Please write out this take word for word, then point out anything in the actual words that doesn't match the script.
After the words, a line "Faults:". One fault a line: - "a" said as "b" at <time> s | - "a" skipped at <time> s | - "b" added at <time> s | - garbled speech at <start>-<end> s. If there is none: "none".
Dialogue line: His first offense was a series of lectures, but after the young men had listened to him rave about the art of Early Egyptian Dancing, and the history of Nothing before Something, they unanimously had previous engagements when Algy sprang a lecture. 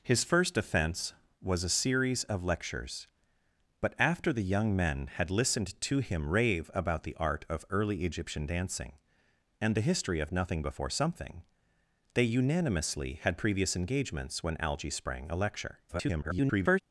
His first offense was a series of lectures, but after the young men had listened to him rave about the art of Early Egyptian Dancing, and the history of Nothing before Something, they unanimously had previous engagements when Algy sprang a lecture. [garbled]
Faults:
- garbled speech at 15.9-16.8 s